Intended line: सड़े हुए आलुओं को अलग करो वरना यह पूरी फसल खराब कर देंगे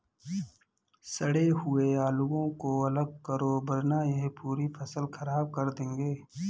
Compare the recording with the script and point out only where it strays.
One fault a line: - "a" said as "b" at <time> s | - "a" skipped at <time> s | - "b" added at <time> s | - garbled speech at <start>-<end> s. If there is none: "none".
none